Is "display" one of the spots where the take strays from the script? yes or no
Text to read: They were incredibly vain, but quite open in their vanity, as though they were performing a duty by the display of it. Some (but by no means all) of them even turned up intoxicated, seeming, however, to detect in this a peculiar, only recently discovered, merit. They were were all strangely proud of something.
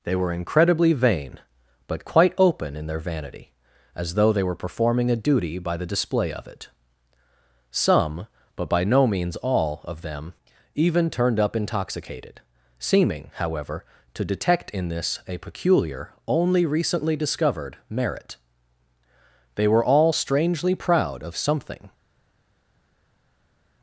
no